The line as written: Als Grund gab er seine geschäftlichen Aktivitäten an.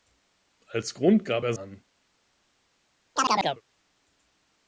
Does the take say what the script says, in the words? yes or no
no